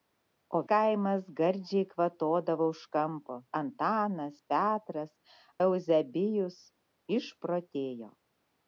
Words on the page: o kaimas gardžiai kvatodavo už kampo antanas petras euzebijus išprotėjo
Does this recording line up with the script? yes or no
yes